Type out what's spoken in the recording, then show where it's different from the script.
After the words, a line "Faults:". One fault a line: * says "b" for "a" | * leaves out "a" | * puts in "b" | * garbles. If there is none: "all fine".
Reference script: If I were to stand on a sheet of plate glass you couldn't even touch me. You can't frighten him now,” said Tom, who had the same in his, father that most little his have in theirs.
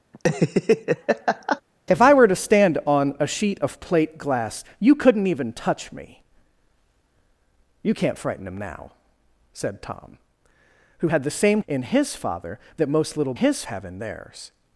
If I were to stand on a sheet of plate glass you couldn't even touch me. You can't frighten him now,” said Tom, who had the same in his, father that most little his have in theirs.
Faults:
all fine